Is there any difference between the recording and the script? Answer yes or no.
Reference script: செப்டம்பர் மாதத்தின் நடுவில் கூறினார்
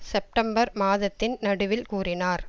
no